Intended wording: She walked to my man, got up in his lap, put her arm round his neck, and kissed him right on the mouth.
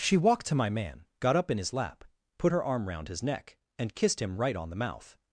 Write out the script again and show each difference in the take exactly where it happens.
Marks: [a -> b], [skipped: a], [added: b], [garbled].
She walked to my man, got up in his lap, put her arm round his neck, and kissed him right on the mouth.